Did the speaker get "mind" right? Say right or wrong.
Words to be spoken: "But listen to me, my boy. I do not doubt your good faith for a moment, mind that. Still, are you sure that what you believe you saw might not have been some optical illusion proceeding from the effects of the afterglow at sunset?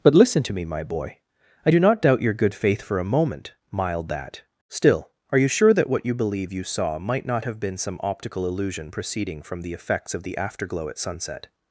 wrong